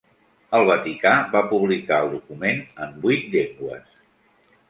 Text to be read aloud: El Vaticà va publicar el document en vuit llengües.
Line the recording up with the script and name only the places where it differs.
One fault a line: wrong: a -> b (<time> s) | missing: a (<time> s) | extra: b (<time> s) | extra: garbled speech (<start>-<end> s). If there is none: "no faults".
no faults